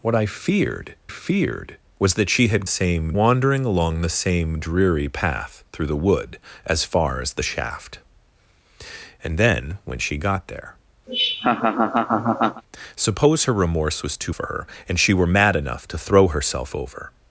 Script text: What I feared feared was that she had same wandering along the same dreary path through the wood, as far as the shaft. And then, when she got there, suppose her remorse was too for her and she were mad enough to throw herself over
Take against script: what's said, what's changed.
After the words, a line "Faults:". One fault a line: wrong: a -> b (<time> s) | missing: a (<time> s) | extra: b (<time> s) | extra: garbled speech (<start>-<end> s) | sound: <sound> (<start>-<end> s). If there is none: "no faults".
What I feared feared was that she had same wandering along the same dreary path through the wood, as far as the shaft. And then, when she got there, suppose her remorse was too for her and she were mad enough to throw herself over
Faults:
sound: laugh (11.1-12.6 s)